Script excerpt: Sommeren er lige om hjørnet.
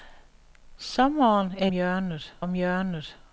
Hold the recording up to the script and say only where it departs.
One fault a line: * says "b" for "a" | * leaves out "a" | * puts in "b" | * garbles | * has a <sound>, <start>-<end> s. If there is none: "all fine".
* says "hjørnet" for "lige"